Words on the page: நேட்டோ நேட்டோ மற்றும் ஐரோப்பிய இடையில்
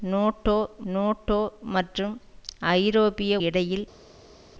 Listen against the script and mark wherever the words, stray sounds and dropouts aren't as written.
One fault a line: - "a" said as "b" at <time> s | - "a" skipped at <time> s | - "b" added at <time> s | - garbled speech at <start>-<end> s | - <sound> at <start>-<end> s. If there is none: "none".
none